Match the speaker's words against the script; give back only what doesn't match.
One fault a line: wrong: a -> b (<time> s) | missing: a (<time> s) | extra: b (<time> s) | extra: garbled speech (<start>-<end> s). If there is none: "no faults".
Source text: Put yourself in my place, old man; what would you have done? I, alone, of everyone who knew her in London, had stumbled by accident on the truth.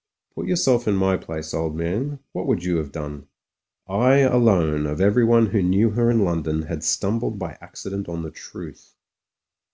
no faults